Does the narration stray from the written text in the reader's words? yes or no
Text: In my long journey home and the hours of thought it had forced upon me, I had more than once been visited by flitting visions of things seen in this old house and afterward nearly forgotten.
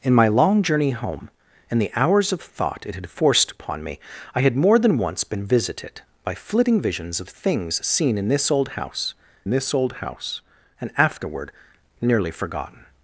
yes